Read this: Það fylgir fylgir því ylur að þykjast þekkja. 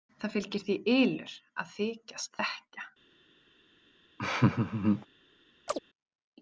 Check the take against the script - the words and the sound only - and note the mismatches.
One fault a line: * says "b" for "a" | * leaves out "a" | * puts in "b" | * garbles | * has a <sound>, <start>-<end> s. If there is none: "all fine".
* leaves out "fylgir"
* has a laugh, 4.2-5.1 s
* has a chirp, 5.7-5.8 s